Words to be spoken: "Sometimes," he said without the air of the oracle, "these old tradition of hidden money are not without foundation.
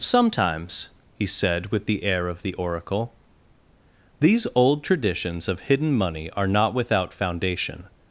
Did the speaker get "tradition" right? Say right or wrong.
wrong